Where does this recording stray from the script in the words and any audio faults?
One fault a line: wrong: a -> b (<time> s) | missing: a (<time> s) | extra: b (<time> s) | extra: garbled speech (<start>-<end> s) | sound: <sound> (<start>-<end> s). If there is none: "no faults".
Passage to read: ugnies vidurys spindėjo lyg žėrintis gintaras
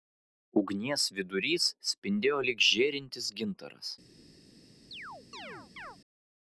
sound: chirp (4.9-6.0 s)